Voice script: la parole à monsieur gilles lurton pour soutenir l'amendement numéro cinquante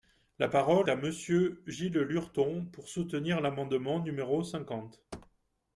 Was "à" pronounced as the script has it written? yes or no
yes